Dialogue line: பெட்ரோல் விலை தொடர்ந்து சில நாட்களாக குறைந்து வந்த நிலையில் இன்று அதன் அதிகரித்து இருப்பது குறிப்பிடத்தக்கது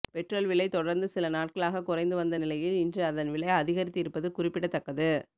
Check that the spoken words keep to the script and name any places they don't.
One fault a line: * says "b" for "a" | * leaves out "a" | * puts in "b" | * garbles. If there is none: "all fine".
* puts in "விலை"